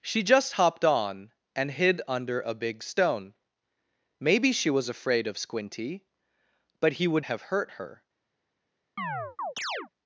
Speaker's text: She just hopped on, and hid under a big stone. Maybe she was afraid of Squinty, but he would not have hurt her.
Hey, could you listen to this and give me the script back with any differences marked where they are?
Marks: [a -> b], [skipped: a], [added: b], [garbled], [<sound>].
She just hopped on, and hid under a big stone. Maybe she was afraid of Squinty, but he would [skipped: not] have hurt her. [chirp]